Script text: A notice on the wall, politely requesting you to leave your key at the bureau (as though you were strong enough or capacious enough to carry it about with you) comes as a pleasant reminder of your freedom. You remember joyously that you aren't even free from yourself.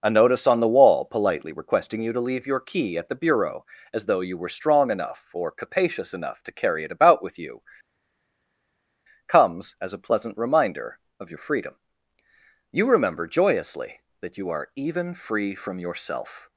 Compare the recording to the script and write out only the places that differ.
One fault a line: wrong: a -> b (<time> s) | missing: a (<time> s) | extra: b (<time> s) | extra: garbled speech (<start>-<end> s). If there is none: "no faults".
wrong: aren't -> are (14.5 s)